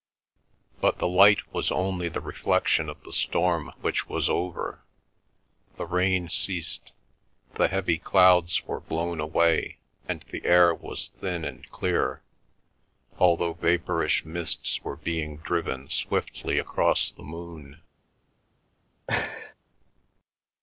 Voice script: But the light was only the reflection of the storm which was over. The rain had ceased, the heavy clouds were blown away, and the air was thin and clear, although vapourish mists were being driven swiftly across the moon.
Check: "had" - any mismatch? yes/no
yes